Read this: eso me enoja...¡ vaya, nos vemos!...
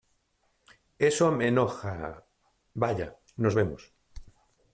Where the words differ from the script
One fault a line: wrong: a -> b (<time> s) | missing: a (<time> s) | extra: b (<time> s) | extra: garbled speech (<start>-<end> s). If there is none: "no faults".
no faults